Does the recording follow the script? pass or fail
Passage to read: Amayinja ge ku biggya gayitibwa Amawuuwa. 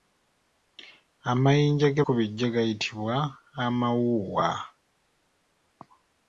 pass